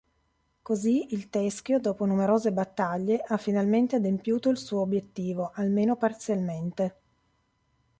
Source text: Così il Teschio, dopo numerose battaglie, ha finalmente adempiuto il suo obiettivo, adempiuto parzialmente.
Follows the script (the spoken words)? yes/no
no